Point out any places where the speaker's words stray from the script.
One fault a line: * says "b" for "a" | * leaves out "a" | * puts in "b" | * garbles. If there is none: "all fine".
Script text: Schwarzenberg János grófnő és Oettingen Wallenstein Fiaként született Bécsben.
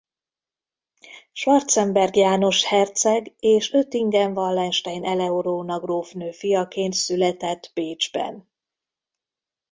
* says "herceg" for "grófnő"
* puts in "Eleonóra grófnő"